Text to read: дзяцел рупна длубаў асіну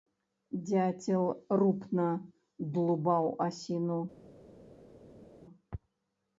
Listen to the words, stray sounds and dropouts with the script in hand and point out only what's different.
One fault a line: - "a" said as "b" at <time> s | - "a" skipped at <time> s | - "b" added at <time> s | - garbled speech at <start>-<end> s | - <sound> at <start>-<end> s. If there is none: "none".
none